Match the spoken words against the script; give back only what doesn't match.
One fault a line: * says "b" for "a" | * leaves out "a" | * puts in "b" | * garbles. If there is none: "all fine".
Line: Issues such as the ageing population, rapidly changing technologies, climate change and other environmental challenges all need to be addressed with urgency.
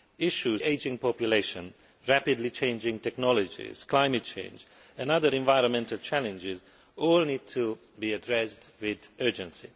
* leaves out "such as the"